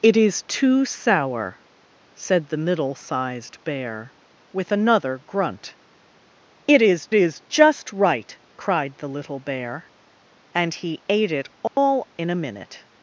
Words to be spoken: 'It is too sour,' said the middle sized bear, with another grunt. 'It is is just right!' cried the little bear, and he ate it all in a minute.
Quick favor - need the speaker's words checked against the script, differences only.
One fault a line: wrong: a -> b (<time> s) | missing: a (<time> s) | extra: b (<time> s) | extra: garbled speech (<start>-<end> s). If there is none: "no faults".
no faults